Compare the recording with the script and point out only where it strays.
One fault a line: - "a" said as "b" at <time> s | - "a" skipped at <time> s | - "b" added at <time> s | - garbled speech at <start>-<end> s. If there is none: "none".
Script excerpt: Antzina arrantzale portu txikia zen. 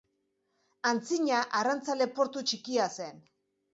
none